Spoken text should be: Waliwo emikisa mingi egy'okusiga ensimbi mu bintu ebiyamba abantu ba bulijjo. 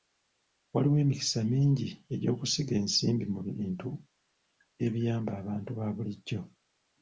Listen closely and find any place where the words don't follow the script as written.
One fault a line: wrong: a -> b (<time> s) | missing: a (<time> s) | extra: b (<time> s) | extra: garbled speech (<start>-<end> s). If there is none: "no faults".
no faults